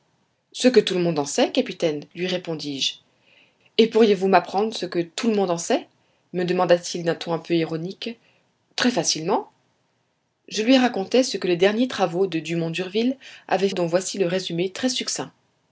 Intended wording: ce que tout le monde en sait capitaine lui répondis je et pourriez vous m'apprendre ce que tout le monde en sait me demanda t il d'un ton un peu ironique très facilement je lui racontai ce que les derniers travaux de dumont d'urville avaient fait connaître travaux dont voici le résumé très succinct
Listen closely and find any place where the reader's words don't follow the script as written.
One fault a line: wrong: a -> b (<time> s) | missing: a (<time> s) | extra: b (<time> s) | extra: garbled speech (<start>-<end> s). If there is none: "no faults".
missing: fait connaître travaux (13.7 s)